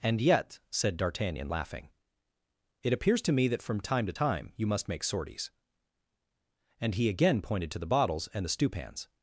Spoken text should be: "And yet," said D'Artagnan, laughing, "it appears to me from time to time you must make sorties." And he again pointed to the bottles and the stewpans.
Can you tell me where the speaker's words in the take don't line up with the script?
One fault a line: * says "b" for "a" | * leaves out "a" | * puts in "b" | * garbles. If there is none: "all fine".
* puts in "that"